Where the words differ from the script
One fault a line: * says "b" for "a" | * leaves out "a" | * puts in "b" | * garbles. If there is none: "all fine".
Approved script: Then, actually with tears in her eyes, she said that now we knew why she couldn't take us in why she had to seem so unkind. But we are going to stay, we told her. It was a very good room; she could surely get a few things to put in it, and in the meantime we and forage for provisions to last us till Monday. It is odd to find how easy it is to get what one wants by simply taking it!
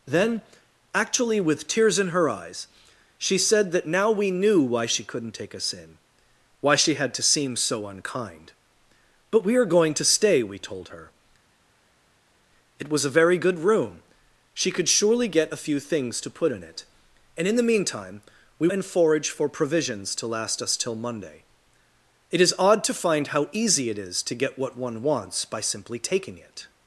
all fine